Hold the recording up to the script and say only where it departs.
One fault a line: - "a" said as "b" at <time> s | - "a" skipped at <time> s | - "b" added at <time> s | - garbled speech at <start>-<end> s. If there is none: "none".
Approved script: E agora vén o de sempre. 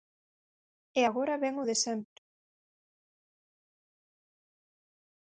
none